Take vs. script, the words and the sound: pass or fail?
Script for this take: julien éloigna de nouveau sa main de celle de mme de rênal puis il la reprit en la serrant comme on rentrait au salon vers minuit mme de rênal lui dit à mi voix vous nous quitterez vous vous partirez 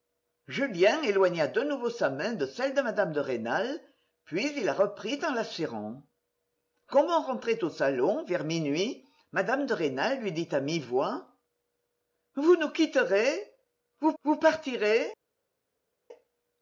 pass